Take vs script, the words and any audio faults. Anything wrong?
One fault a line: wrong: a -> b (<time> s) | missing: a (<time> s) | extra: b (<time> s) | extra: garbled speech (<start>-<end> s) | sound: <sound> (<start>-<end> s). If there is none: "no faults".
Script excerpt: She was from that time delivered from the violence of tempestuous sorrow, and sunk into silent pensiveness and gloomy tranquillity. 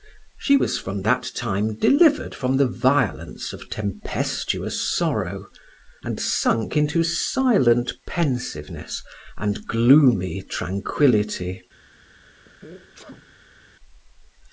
sound: sneeze (12.2-13.6 s)